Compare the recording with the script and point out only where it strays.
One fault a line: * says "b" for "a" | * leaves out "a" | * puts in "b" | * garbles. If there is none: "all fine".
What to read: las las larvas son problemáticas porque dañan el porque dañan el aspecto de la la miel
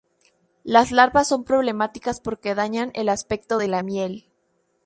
* leaves out "las"
* leaves out "porque dañan el"
* leaves out "la"